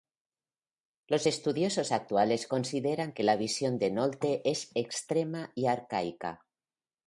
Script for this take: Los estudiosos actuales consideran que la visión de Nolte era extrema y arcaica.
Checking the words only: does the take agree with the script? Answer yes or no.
no